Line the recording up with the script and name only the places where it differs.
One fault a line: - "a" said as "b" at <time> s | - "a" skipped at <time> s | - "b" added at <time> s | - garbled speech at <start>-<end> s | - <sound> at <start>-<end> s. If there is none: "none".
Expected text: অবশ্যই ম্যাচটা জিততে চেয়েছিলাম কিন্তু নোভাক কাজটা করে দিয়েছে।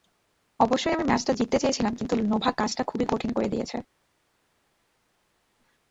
- "আমি" added at 0.9 s
- "খুবই কঠিন" added at 2.8 s